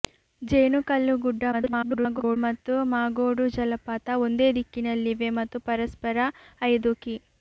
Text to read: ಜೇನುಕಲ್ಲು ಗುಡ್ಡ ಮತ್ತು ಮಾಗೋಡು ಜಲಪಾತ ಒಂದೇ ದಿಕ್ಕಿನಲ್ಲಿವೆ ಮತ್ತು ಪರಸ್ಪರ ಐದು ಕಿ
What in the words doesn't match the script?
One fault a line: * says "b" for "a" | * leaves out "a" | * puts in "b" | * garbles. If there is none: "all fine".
* garbles